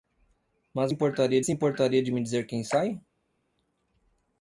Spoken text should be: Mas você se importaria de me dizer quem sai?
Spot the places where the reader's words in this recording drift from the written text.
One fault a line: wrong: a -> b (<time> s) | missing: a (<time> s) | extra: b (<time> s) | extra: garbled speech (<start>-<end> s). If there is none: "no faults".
wrong: você -> importaria (0.9 s)